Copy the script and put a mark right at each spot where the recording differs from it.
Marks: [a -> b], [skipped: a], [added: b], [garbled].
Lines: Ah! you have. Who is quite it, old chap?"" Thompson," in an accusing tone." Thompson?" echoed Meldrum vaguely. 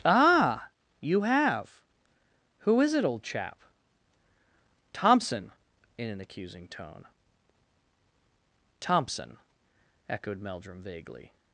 Ah! you have. Who is [skipped: quite] it, old chap?"" Thompson," in an accusing tone." Thompson?" echoed Meldrum vaguely.